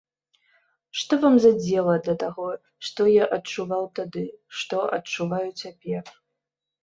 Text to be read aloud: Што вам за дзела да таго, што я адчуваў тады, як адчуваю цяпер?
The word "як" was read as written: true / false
false